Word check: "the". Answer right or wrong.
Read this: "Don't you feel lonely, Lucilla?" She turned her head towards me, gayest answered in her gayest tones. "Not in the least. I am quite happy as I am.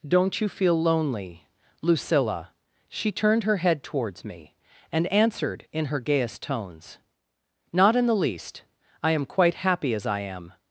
right